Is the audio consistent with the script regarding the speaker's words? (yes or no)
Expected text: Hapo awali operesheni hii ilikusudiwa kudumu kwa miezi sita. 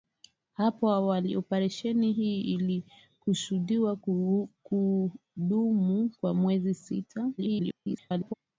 no